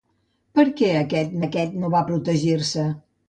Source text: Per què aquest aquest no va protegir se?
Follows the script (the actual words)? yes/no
yes